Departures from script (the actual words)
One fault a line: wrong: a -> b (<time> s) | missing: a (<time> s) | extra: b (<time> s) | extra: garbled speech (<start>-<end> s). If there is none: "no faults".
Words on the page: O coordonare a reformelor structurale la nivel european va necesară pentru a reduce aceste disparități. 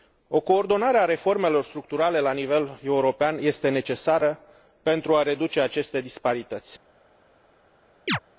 wrong: va -> este (3.4 s)